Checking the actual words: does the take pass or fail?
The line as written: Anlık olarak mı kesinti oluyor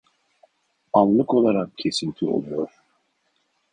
fail